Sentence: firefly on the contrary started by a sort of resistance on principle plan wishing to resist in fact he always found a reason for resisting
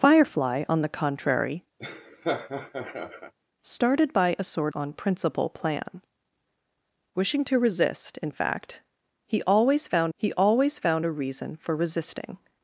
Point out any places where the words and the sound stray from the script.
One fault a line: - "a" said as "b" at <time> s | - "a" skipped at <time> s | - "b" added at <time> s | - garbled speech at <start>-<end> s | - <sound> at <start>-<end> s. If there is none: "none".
- laugh at 1.8-3.3 s
- "of resistance" skipped at 4.7 s
- "he always found" added at 10.1 s